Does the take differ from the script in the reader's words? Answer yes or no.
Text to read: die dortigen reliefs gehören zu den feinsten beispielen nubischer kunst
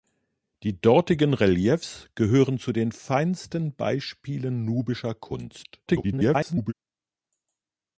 yes